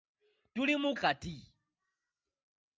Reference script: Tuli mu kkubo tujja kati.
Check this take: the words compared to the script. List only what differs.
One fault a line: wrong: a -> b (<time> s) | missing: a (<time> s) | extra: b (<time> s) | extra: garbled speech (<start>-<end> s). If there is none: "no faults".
missing: kkubo tujja (0.9 s)